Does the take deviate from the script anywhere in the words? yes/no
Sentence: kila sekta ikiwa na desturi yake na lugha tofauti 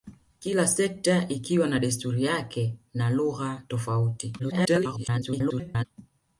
yes